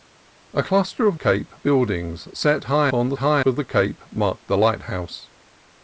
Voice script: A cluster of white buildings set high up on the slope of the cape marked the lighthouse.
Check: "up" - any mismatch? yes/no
yes